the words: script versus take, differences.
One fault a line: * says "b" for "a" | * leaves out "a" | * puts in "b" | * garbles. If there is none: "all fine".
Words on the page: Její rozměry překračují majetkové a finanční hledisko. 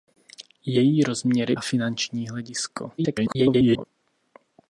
* leaves out "překračují majetkové"
* garbles